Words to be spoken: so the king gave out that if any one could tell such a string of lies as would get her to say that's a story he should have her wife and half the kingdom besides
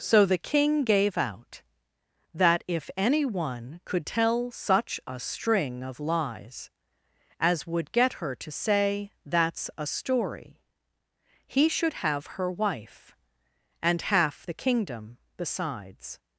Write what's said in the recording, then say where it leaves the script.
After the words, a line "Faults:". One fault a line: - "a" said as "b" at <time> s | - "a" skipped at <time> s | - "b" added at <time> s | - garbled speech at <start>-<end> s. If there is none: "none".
so the king gave out that if any one could tell such a string of lies as would get her to say that's a story he should have her wife and half the kingdom besides
Faults:
none